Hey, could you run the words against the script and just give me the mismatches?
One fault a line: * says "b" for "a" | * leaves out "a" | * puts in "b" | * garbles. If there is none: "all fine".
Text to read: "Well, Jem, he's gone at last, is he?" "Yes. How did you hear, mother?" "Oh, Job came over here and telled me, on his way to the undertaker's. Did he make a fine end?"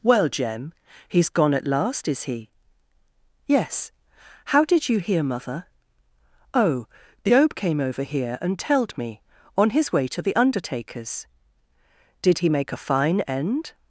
all fine